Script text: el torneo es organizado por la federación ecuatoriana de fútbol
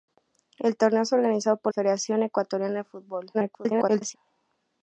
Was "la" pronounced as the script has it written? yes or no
no